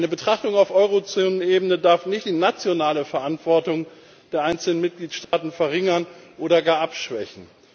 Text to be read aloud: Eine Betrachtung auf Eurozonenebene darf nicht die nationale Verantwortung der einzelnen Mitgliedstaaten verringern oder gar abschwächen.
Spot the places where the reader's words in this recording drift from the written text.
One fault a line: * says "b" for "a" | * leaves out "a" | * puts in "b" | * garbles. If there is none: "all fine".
all fine